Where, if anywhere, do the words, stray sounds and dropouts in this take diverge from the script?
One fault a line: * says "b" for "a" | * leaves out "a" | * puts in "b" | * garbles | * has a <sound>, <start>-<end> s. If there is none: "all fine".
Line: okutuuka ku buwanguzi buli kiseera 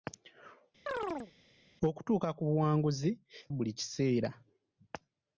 * has a chirp, 0.9-1.3 s